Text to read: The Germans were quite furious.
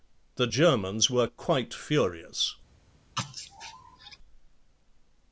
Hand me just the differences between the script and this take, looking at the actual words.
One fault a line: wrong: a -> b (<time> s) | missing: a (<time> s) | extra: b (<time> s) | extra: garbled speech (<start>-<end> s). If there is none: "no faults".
no faults